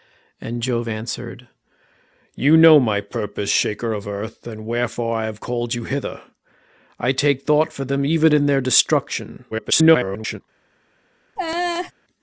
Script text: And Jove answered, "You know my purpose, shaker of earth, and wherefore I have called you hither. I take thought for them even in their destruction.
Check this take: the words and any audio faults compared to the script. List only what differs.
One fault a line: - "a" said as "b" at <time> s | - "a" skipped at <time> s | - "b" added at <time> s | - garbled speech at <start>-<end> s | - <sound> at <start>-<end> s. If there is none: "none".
- garbled speech at 9.5-10.4 s
- laugh at 11.4-11.9 s